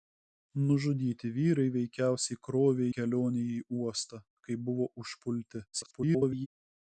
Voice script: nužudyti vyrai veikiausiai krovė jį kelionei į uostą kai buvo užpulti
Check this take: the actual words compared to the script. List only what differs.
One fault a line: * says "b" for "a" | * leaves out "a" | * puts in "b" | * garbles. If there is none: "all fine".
* leaves out "jį"
* garbles